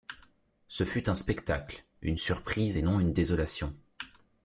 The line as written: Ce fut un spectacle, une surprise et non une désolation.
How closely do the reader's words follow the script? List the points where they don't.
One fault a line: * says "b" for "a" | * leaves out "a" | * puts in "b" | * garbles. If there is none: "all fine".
all fine